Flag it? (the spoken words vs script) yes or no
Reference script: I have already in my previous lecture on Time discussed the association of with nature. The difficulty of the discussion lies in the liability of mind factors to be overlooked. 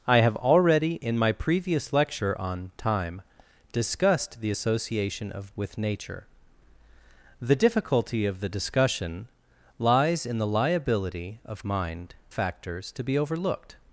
no